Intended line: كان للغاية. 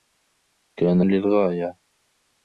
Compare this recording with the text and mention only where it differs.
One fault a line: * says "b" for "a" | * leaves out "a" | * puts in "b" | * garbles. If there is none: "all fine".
all fine